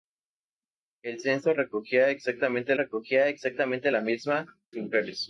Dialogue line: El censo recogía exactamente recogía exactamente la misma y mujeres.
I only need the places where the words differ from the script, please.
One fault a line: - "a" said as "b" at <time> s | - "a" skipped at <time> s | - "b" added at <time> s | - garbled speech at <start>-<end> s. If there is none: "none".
none